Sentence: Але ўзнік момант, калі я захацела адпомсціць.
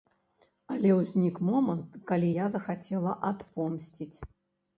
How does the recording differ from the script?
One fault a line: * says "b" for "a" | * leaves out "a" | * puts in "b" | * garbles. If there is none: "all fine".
all fine